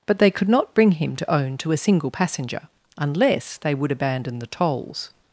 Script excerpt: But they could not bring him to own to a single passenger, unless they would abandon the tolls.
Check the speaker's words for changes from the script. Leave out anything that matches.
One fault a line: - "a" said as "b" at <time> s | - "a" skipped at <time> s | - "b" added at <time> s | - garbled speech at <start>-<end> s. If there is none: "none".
none